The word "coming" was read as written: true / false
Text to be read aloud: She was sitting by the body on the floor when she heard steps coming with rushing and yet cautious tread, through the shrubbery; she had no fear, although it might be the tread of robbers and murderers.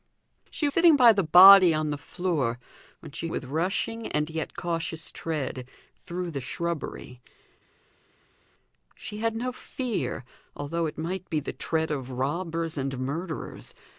false